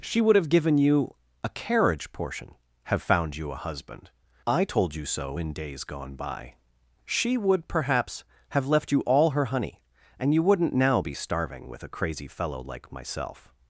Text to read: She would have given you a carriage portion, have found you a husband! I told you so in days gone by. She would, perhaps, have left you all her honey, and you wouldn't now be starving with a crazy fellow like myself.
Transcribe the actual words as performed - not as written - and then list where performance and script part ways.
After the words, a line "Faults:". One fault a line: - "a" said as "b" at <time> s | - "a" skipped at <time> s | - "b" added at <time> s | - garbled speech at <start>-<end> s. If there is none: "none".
She would have given you a carriage portion, have found you a husband! I told you so in days gone by. She would, perhaps, have left you all her honey, and you wouldn't now be starving with a crazy fellow like myself.
Faults:
none